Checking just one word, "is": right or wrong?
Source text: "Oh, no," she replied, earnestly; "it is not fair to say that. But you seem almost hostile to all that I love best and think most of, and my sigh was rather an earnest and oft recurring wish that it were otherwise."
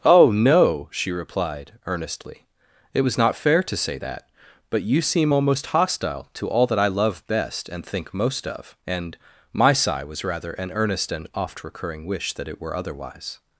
wrong